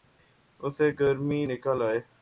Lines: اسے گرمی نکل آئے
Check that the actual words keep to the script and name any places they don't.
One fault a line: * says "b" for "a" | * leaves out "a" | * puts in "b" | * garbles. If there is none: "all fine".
all fine